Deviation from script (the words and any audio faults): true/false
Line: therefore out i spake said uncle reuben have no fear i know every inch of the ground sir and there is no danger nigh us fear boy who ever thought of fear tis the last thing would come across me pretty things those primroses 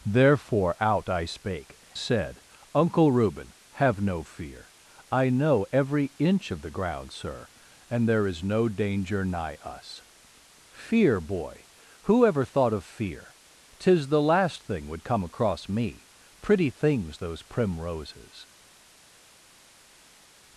false